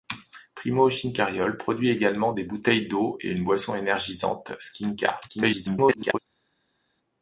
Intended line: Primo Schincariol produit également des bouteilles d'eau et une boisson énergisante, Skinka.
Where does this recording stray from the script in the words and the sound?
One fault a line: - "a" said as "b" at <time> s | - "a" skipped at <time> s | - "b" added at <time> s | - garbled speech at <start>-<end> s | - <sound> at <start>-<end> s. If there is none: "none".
- garbled speech at 5.3-6.2 s